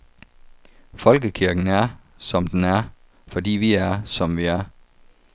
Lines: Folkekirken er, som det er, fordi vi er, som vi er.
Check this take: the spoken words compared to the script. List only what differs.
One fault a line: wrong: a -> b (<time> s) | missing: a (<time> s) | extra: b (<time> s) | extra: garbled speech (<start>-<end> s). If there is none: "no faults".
wrong: det -> den (2.5 s)